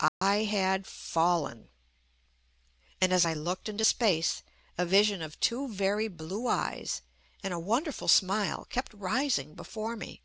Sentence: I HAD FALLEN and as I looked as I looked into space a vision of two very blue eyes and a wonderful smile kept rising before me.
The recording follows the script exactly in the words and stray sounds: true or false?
false